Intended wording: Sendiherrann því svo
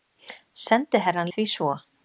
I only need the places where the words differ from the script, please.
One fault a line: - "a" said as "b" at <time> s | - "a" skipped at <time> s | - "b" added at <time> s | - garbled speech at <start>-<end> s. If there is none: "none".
none